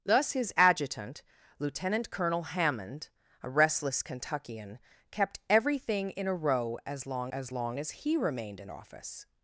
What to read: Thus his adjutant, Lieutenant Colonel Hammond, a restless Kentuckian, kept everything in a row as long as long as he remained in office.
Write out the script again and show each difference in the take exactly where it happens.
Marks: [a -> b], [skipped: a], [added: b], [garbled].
Thus his adjutant, Lieutenant Colonel Hammond, a restless Kentuckian, kept everything in a row as long as long as he remained in office.